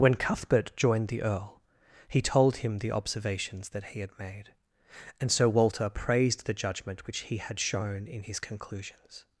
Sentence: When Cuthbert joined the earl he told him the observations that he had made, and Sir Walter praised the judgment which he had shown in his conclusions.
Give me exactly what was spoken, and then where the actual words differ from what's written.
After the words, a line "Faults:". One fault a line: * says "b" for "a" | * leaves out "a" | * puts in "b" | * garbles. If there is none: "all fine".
When Cuthbert joined the earl he told him the observations that he had made, and Sir Walter praised the judgment which he had shown in his conclusions.
Faults:
all fine